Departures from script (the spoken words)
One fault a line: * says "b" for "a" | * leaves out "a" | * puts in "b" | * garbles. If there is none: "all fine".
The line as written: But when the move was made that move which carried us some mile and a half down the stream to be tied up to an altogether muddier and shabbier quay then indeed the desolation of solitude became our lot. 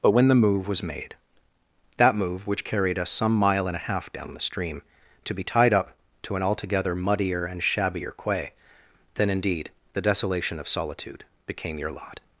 * says "your" for "our"